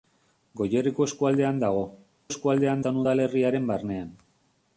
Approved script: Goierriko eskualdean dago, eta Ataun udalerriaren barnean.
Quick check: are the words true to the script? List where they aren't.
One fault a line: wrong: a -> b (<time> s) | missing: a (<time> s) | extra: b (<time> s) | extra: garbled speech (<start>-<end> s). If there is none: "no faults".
wrong: eta -> eskualdean (2.3 s)